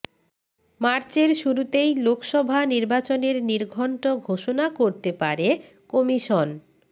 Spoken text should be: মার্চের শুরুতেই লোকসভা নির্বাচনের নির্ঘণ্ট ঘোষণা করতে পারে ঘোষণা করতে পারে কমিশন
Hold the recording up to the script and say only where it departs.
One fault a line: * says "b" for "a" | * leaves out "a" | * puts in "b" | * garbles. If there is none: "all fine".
* leaves out "ঘোষণা করতে পারে"